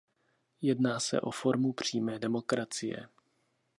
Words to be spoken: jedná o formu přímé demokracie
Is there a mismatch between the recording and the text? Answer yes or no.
yes